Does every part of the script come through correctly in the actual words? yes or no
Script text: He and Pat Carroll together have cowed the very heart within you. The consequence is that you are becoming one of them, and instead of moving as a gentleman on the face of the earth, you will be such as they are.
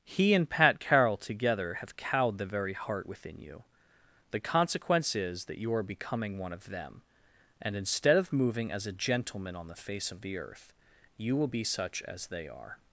yes